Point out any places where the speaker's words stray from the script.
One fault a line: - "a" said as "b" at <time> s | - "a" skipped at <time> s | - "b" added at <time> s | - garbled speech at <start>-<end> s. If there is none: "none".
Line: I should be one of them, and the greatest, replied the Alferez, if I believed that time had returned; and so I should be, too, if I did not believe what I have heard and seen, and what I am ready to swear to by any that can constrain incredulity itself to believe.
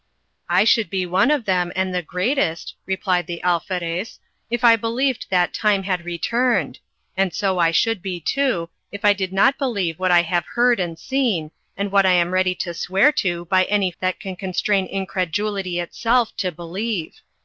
none